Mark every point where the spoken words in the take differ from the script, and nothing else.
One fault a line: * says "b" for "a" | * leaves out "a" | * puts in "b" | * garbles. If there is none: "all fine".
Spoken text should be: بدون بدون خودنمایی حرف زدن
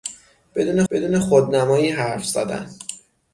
all fine